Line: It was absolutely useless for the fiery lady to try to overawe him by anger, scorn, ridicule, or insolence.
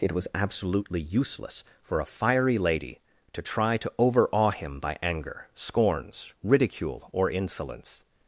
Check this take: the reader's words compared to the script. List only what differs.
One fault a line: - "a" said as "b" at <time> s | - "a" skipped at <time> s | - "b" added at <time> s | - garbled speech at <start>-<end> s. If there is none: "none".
- "the" said as "a" at 2.0 s
- "scorn" said as "scorns" at 5.5 s